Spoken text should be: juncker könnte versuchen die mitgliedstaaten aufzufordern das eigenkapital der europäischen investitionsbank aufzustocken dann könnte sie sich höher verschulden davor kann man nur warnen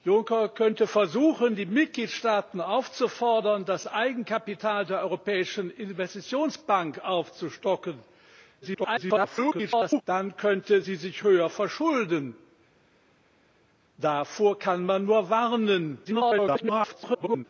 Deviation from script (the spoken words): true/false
true